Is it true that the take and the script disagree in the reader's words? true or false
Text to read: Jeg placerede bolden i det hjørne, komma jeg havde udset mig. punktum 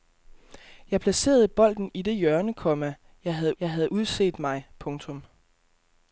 true